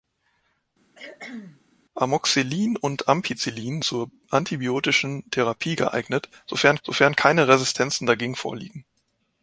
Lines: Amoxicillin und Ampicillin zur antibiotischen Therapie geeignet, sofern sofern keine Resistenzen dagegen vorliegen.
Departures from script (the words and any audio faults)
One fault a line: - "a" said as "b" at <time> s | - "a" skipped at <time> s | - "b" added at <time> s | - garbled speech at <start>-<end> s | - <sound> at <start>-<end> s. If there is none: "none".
- cough at 1.0-1.6 s